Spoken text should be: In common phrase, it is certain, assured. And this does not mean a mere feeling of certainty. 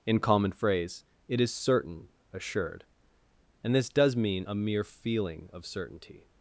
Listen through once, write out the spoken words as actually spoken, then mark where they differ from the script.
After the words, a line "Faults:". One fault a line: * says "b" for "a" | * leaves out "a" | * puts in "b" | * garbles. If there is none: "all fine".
In common phrase, it is certain, assured. And this does mean a mere feeling of certainty.
Faults:
* leaves out "not"